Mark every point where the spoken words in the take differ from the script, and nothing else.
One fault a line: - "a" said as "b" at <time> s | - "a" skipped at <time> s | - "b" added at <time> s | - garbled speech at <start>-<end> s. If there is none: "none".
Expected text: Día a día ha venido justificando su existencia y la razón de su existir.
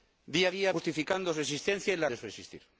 - "venido" skipped at 0.7 s
- "razón" skipped at 2.1 s